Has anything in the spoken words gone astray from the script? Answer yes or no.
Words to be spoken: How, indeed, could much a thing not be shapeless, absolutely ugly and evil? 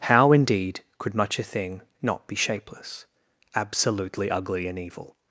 no